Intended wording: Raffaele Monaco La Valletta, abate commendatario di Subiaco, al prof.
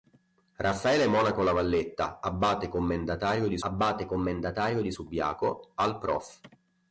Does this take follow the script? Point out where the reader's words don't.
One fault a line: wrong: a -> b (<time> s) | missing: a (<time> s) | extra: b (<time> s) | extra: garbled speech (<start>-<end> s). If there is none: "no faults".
extra: abate commendatario di (3.6 s)